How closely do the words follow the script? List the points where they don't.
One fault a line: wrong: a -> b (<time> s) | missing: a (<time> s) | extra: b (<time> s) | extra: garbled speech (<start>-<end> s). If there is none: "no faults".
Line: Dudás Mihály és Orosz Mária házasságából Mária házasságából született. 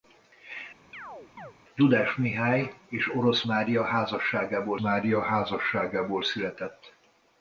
no faults